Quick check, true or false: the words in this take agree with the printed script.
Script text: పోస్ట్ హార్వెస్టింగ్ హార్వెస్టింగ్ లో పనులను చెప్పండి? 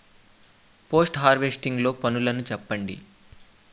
false